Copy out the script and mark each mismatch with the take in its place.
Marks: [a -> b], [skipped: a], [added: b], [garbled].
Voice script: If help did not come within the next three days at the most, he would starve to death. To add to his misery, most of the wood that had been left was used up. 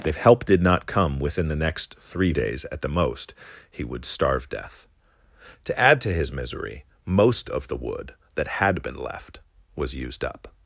If help did not come within the next three days at the most, he would starve [skipped: to] death. To add to his misery, most of the wood that had been left was used up.